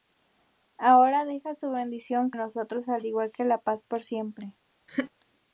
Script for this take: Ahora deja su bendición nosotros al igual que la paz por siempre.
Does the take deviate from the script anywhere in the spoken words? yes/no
no